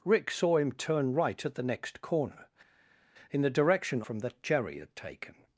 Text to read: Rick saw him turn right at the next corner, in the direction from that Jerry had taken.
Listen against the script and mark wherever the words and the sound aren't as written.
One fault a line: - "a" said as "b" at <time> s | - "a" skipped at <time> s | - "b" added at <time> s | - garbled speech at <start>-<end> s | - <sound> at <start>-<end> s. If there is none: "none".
none